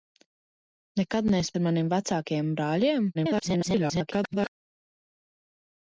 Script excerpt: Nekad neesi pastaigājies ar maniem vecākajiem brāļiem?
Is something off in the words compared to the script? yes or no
yes